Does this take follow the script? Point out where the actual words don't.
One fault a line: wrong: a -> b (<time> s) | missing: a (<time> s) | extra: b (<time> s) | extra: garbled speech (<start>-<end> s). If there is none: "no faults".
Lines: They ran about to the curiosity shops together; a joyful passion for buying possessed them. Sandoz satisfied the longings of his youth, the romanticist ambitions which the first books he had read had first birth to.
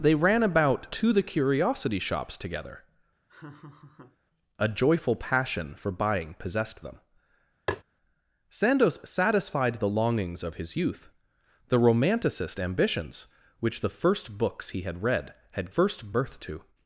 no faults